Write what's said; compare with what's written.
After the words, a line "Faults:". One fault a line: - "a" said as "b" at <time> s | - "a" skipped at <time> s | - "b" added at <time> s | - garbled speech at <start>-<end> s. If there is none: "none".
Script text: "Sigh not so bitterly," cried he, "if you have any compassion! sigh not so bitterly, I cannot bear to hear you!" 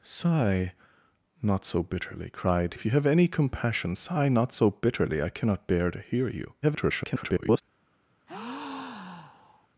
"Sigh not so bitterly," cried "if you have any compassion! sigh not so bitterly, I cannot bear to hear you!" [garbled]
Faults:
- "he" skipped at 2.8 s
- garbled speech at 6.6-7.6 s